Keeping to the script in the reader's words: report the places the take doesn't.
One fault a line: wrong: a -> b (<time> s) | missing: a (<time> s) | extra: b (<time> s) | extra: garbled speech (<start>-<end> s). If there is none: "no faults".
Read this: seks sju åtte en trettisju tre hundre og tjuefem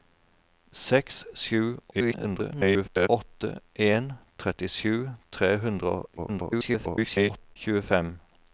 extra: garbled speech (1.9-3.1 s)
extra: garbled speech (6.2-7.6 s)